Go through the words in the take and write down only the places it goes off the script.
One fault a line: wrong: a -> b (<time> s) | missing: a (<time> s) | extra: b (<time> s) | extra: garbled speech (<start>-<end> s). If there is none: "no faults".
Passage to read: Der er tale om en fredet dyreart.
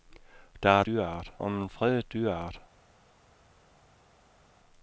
wrong: tale -> dyreart (0.8 s)